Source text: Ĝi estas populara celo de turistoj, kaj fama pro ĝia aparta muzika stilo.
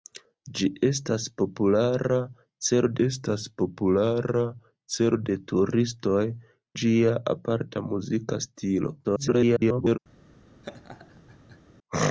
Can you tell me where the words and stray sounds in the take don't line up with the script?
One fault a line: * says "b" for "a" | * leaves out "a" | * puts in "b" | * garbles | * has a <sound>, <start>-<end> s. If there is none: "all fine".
* says "estas populara celo de turistoj" for "de turistoj kaj fama pro"
* garbles
* has a laugh, 10.6-11.6 s